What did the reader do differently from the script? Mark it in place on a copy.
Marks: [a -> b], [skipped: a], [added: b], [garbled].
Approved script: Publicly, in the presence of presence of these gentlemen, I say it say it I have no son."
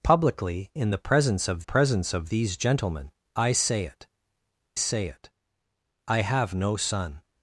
Publicly, in the presence of presence of these gentlemen, I say it say it I have no son."